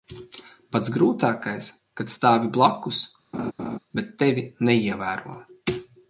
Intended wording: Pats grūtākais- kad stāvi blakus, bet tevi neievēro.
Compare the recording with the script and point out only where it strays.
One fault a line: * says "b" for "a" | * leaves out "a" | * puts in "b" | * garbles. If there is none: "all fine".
all fine